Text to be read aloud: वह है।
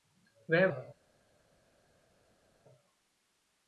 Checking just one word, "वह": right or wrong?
right